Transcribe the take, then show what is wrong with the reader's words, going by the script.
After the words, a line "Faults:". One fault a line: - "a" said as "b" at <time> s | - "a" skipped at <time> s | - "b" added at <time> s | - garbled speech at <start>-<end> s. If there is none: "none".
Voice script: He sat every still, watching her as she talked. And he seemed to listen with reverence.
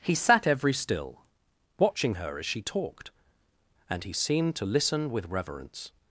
He sat every still, watching her as she talked. And he seemed to listen with reverence.
Faults:
none